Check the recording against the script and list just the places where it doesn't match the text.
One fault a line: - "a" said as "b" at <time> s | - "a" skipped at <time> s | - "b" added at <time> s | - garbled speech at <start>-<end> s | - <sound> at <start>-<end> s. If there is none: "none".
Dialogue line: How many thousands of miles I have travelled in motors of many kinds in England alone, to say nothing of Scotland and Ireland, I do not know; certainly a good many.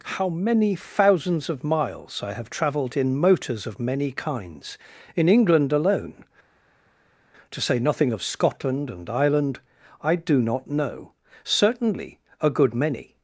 none